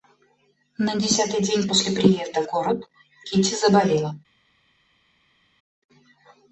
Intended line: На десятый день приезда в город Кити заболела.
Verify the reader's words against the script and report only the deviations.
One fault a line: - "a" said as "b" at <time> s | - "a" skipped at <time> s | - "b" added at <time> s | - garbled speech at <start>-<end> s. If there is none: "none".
- "после" added at 1.7 s